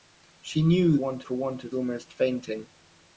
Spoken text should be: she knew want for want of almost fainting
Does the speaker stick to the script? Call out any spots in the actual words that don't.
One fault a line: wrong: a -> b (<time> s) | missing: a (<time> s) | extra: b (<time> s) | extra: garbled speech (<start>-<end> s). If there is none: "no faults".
no faults